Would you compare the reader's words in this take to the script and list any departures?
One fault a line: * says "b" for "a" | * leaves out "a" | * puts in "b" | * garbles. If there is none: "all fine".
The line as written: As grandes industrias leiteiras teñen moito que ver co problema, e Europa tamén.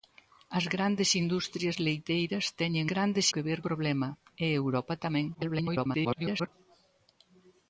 * says "grandes" for "moito"
* leaves out "co"
* garbles